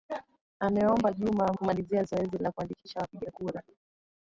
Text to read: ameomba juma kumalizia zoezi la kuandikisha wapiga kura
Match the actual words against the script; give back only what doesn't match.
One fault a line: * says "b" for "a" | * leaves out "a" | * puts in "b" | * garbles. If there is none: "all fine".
all fine